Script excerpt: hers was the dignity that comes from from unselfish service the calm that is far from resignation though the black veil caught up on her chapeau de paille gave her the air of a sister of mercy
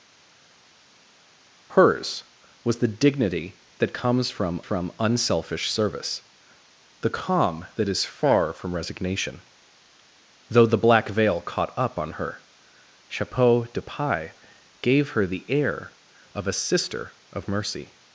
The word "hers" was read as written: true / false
true